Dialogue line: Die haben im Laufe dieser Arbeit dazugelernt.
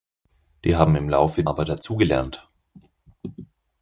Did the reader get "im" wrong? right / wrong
right